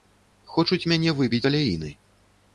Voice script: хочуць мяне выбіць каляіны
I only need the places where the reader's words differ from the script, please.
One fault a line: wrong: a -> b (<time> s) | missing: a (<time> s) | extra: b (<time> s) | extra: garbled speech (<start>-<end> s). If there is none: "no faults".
no faults